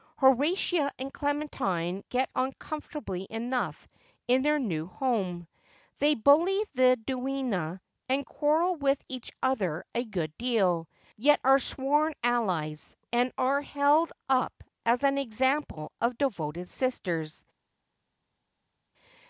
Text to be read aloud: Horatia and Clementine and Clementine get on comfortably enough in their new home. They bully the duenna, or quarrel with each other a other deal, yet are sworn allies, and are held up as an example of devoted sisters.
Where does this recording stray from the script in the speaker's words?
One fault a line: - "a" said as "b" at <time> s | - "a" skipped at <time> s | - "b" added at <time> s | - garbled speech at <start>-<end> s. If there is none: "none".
- "and Clementine" skipped at 2.0 s
- "or" said as "and" at 8.1 s
- "other" said as "good" at 10.0 s